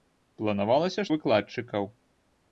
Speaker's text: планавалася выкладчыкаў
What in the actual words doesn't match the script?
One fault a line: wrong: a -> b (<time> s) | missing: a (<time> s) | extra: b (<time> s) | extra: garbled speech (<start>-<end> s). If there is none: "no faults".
no faults